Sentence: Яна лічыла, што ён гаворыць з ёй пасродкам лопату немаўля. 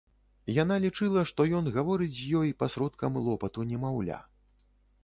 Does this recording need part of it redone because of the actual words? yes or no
no